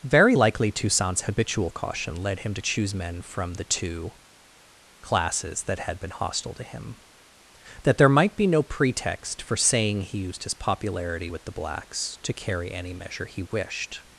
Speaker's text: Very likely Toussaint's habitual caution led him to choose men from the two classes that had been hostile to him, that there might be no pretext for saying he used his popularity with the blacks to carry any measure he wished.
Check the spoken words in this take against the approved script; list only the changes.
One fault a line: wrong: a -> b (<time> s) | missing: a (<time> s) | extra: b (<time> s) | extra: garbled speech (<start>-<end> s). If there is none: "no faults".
no faults